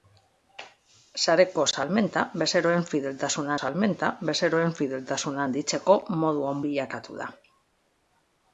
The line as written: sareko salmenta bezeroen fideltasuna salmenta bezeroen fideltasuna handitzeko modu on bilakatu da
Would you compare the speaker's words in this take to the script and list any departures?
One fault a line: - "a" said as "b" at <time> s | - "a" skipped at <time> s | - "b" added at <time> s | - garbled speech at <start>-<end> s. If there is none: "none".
none